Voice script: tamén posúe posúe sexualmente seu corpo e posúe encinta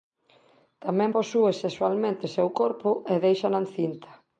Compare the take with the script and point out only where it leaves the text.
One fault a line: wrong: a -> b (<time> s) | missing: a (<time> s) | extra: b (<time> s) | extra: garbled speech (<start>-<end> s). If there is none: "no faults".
missing: posúe (1.5 s)
wrong: posúe -> déixana (3.3 s)